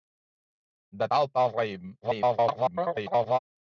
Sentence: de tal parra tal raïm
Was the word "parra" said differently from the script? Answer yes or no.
yes